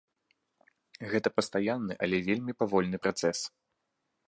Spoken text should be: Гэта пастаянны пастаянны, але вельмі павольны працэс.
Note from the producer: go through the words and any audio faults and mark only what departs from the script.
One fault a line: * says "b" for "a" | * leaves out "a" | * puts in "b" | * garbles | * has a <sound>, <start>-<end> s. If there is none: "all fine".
* leaves out "пастаянны"